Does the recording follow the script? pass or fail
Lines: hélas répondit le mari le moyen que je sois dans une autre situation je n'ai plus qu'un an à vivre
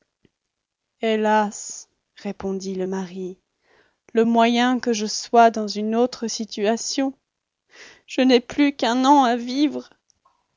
pass